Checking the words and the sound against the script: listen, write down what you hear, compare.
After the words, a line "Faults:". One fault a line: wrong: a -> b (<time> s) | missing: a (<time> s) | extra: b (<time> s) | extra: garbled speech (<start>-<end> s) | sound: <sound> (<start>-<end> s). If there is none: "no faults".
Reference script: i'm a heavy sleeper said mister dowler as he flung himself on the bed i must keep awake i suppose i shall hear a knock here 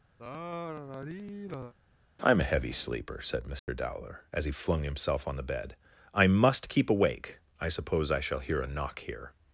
i'm a heavy sleeper said mister dowler as he flung himself on the bed i must keep awake i suppose i shall hear a knock here
Faults:
sound: sigh (0.2-1.7 s)
sound: dropout (3.6-3.7 s)